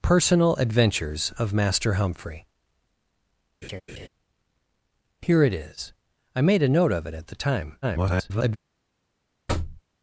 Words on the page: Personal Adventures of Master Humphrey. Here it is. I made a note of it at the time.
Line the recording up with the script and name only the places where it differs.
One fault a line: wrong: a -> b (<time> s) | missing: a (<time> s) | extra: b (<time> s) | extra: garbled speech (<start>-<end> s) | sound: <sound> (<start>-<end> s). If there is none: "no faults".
sound: laugh (3.6-4.1 s)
extra: garbled speech (7.8-8.6 s)
sound: thud (9.5-9.8 s)